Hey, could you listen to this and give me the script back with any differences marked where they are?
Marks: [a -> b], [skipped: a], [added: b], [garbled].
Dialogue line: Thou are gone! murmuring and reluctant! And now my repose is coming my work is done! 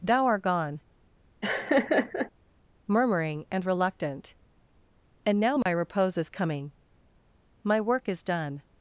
Thou [are -> art] gone! murmuring and reluctant! And now my repose is coming my work is done!